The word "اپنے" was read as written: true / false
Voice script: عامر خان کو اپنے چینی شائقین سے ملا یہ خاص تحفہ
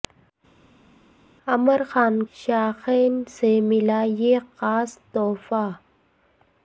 false